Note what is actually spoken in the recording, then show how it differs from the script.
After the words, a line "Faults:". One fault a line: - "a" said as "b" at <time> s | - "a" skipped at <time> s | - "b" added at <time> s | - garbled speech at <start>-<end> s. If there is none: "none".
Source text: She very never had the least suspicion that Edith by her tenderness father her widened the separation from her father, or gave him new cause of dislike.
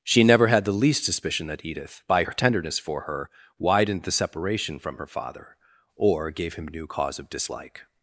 She never had the least suspicion that Edith by her tenderness for her widened the separation from her father, or gave him new cause of dislike.
Faults:
- "very" skipped at 0.2 s
- "father" said as "for" at 2.8 s